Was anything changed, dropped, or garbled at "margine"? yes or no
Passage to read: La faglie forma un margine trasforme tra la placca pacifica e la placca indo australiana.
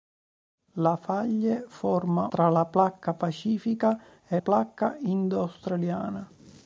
yes